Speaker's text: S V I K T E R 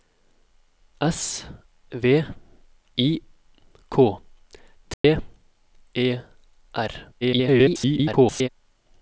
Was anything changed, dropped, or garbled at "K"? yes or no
no